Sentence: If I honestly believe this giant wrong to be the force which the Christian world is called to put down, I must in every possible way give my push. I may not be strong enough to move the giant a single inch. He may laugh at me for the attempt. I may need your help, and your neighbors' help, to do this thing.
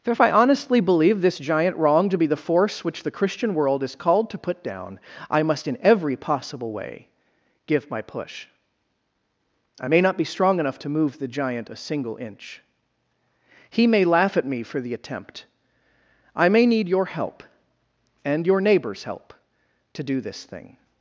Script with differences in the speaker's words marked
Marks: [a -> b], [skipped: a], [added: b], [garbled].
[added: for] If I honestly believe this giant wrong to be the force which the Christian world is called to put down, I must in every possible way give my push. I may not be strong enough to move the giant a single inch. He may laugh at me for the attempt. I may need your help, and your neighbors' help, to do this thing.